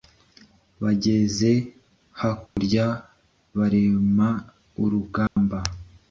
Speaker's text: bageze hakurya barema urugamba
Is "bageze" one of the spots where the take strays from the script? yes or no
no